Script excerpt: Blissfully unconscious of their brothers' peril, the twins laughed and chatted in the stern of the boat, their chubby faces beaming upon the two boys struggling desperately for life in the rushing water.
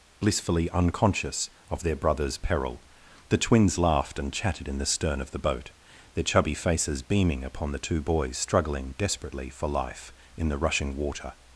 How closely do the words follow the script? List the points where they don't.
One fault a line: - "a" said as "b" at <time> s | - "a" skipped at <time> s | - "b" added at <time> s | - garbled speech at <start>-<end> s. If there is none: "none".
none